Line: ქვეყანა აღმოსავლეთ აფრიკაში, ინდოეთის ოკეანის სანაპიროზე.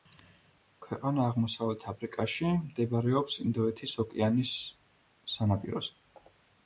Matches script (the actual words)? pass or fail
fail